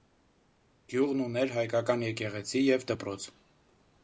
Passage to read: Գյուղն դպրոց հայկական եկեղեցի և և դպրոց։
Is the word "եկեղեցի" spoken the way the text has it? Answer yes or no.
yes